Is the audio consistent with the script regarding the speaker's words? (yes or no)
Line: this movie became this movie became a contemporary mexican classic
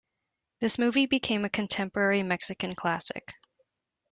no